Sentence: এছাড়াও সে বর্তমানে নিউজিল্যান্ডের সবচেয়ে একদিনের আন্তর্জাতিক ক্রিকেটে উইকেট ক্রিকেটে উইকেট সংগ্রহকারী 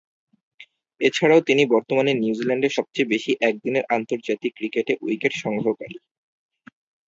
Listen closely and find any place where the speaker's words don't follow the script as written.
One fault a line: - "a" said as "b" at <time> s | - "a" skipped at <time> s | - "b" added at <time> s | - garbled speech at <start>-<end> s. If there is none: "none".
- "সে" said as "তিনি" at 1.4 s
- "বেশি" added at 3.1 s
- "ক্রিকেটে উইকেট" skipped at 5.3 s